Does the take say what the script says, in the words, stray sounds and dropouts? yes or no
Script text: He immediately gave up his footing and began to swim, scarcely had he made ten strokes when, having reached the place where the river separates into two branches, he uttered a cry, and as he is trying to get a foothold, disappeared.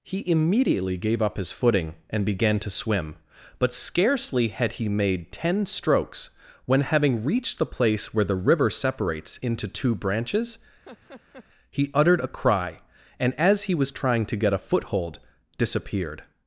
no